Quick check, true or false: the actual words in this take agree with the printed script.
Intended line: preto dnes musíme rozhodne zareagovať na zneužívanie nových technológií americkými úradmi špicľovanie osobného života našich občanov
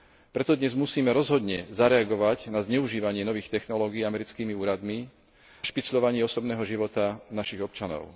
true